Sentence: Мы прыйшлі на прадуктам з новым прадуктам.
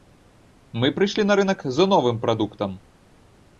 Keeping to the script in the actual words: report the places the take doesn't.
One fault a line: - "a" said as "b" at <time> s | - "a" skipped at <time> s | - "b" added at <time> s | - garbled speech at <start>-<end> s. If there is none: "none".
- "прадуктам" said as "рынак" at 1.4 s